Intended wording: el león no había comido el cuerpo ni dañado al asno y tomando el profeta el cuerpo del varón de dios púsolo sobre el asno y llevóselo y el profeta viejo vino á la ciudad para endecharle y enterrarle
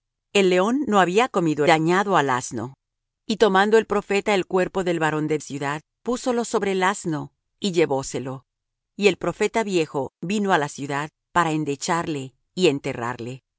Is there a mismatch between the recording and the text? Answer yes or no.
yes